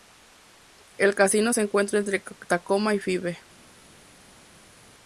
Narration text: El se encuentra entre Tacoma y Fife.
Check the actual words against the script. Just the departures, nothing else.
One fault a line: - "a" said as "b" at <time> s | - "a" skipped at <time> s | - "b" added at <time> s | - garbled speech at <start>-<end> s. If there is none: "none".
- "casino" added at 1.1 s